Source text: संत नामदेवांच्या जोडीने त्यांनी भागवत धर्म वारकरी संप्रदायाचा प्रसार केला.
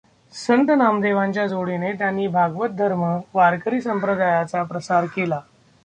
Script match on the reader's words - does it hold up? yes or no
yes